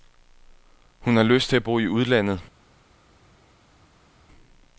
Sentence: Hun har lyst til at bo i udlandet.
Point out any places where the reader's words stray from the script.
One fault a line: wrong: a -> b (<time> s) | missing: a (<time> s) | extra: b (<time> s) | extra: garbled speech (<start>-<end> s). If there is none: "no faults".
no faults